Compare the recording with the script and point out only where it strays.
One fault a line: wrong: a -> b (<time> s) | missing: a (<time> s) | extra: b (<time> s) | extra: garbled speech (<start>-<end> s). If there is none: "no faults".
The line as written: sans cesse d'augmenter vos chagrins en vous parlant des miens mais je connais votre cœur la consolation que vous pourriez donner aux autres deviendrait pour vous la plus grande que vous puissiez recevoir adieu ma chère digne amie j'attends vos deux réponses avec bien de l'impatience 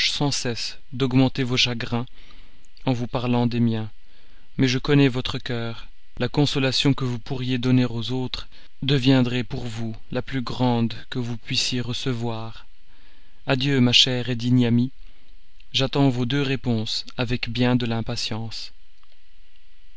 no faults